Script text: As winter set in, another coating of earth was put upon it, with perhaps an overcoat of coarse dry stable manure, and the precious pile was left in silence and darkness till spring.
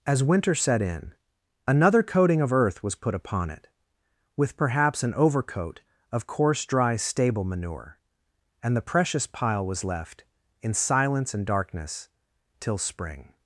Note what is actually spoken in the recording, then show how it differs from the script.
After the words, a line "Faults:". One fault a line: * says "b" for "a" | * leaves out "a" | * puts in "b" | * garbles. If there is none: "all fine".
As winter set in, another coating of earth was put upon it, with perhaps an overcoat of coarse dry stable manure, and the precious pile was left in silence and darkness till spring.
Faults:
all fine